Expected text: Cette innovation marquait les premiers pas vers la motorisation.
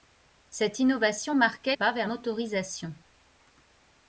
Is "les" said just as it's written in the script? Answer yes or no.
no